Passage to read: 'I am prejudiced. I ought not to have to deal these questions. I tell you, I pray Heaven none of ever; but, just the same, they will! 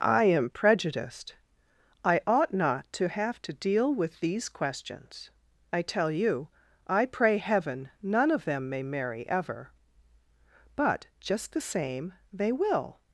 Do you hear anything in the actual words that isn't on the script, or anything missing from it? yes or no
yes